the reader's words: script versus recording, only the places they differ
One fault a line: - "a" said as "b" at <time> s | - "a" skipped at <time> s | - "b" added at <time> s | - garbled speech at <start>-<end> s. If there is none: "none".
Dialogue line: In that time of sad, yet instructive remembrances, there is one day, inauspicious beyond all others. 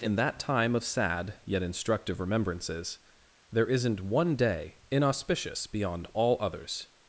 - "is" said as "isn't" at 3.7 s